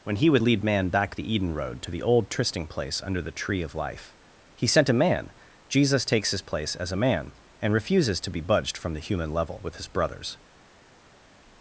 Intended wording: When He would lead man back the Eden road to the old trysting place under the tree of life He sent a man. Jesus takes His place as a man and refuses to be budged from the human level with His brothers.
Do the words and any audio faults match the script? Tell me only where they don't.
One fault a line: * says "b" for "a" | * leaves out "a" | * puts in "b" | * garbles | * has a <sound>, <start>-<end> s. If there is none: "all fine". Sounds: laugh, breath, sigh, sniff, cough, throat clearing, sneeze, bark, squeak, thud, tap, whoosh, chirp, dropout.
all fine